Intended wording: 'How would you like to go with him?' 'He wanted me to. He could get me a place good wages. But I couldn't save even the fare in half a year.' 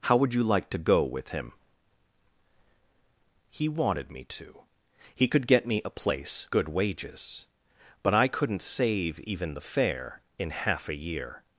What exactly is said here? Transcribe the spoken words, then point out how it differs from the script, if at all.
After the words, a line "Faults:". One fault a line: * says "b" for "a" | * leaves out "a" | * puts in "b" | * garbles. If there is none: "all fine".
'How would you like to go with him?' 'He wanted me to. He could get me a place good wages. But I couldn't save even the fare in half a year.'
Faults:
all fine